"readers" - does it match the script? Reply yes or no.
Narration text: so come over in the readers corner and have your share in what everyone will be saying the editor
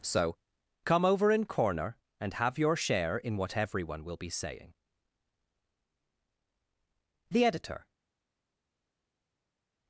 no